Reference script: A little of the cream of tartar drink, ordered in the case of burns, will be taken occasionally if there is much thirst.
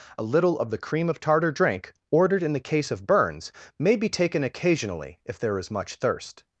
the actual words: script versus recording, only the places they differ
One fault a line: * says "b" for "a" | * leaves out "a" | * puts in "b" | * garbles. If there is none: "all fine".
* says "may" for "will"